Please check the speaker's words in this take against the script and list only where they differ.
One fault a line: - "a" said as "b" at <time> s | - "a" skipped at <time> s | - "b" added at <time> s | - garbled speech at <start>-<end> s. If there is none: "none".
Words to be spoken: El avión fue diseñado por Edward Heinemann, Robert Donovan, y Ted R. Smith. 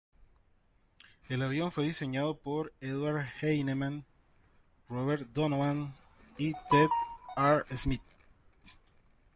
none